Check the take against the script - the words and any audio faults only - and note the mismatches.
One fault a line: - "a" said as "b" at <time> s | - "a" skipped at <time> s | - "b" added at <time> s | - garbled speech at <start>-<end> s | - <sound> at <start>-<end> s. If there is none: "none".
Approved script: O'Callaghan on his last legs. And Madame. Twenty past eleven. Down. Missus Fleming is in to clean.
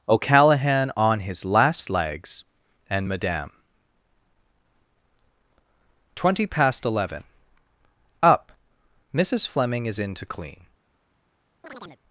- "Down" said as "Up" at 8.2 s
- chirp at 11.6-12.0 s